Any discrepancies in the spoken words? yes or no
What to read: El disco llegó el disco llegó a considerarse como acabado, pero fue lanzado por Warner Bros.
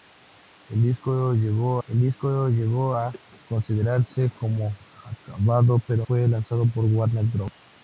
no